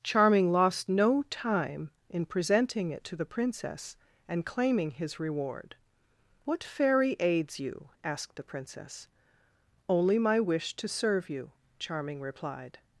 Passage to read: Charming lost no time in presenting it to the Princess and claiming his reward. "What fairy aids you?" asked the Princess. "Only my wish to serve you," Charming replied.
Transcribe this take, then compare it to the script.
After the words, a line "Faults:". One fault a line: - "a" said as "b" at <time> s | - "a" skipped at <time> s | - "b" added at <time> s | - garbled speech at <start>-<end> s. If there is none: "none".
Charming lost no time in presenting it to the Princess and claiming his reward. "What fairy aids you?" asked the Princess. "Only my wish to serve you," Charming replied.
Faults:
none